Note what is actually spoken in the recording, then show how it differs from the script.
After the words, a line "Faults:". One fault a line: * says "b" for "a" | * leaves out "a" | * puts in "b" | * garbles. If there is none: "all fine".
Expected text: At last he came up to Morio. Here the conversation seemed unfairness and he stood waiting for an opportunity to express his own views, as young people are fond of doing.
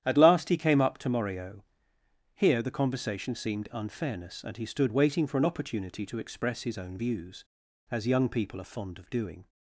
At last he came up to Morio. Here the conversation seemed unfairness and he stood waiting for an opportunity to express his own views, as young people are fond of doing.
Faults:
all fine